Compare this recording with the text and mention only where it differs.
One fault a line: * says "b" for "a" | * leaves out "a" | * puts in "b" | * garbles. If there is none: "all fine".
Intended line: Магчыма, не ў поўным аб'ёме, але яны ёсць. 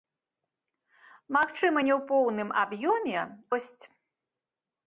* leaves out "але яны"